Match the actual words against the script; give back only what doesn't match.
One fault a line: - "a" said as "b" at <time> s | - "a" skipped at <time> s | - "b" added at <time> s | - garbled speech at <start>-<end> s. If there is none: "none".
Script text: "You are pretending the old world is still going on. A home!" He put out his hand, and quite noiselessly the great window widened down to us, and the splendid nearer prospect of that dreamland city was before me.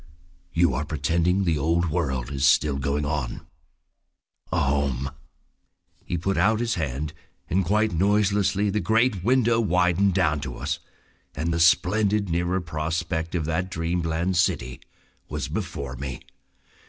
none